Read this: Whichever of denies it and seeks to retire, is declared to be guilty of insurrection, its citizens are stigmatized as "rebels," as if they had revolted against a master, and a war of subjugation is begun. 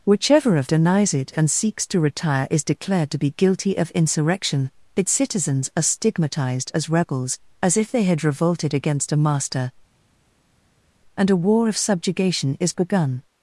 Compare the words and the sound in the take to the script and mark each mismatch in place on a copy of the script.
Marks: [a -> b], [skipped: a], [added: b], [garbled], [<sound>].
Whichever of denies it and seeks to retire, is declared to be guilty of insurrection, its citizens are stigmatized as "rebels," as if they had revolted against a master, and a war of subjugation is begun.